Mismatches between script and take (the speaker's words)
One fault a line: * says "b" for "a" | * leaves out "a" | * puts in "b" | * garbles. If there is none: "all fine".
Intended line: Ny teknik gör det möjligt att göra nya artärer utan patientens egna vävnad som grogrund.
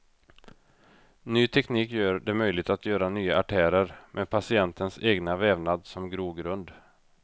* says "med" for "utan"